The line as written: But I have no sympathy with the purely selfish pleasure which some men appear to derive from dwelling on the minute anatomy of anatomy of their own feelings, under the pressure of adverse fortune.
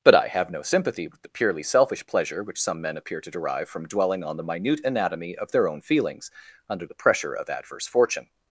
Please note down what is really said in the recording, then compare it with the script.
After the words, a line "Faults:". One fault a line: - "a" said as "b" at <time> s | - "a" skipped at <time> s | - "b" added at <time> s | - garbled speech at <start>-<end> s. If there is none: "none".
But I have no sympathy with the purely selfish pleasure which some men appear to derive from dwelling on the minute anatomy of their own feelings, under the pressure of adverse fortune.
Faults:
- "anatomy of" skipped at 5.5 s